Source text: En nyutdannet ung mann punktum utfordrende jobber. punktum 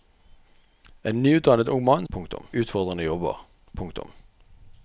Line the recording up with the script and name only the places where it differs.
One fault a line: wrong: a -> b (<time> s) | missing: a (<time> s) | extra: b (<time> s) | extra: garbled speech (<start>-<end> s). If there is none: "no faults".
no faults